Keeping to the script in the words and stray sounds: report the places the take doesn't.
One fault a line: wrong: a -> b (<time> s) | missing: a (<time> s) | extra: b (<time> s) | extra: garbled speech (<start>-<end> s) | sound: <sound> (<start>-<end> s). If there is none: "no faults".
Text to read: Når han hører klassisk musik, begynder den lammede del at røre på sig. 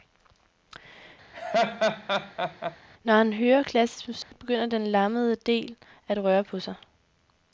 sound: laugh (1.3-2.8 s)
sound: dropout (4.2-4.3 s)